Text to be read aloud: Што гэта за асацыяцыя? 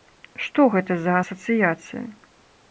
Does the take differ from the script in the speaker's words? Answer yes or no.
no